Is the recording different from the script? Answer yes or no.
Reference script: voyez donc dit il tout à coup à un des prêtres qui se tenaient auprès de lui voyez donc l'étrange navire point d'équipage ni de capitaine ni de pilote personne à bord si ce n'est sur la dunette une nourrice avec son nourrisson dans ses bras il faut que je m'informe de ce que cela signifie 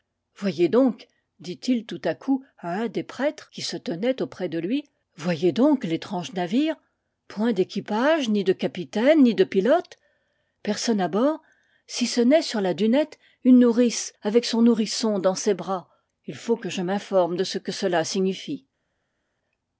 no